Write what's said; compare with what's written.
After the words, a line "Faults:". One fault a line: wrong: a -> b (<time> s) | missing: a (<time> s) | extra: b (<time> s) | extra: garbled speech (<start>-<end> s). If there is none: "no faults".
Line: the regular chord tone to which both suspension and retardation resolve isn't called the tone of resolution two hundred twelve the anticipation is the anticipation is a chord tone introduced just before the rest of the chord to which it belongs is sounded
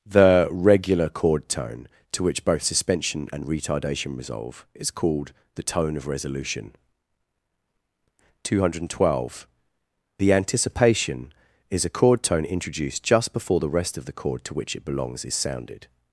the regular chord tone to which both suspension and retardation resolve is called the tone of resolution two hundred twelve the anticipation is a chord tone introduced just before the rest of the chord to which it belongs is sounded
Faults:
wrong: isn't -> is (4.7 s)
missing: the anticipation is (11.8 s)